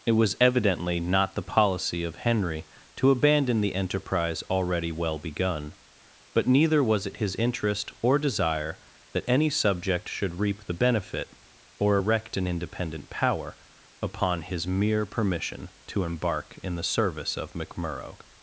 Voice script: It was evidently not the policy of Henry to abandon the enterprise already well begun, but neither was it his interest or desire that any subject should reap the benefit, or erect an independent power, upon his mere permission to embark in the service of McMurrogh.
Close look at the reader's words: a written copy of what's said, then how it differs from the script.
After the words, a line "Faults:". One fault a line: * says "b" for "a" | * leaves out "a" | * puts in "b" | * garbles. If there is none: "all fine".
It was evidently not the policy of Henry to abandon the enterprise already well begun, but neither was it his interest or desire that any subject should reap the benefit, or erect an independent power, upon his mere permission to embark in the service of McMurrogh.
Faults:
all fine